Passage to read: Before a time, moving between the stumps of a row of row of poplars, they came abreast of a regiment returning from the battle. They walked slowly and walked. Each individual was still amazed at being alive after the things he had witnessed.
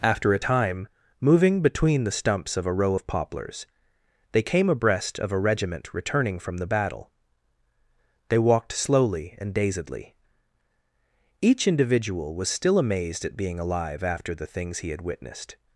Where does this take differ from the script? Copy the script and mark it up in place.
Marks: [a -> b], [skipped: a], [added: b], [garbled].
[Before -> After] a time, moving between the stumps of a row of [skipped: row of] poplars, they came abreast of a regiment returning from the battle. They walked slowly and [walked. -> dazedly] Each individual was still amazed at being alive after the things he had witnessed.